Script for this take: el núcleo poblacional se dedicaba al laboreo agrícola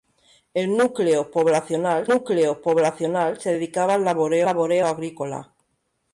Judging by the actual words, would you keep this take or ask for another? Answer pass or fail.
fail